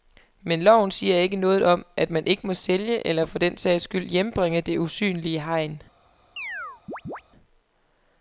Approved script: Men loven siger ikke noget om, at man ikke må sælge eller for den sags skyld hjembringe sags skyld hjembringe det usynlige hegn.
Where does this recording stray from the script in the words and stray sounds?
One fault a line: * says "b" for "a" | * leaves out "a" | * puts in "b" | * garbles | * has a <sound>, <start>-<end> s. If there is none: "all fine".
* leaves out "sags skyld hjembringe"
* has a chirp, 6.4-7.2 s